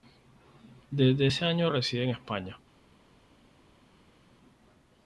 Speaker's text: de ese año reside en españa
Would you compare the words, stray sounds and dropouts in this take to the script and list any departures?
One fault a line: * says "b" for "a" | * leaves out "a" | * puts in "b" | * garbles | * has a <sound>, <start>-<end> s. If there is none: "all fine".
* says "desde" for "de"